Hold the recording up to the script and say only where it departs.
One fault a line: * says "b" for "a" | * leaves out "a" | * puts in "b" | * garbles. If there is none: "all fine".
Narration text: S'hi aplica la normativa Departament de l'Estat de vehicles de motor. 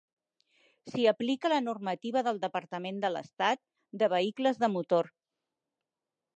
* puts in "del"